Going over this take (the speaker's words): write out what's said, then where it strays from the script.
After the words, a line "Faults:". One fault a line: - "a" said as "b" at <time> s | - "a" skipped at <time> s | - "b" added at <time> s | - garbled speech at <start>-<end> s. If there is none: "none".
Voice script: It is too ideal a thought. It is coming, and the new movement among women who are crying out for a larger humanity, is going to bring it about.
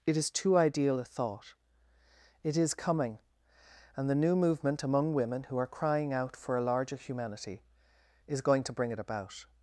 It is too ideal a thought. It is coming, and the new movement among women who are crying out for a larger humanity, is going to bring it about.
Faults:
none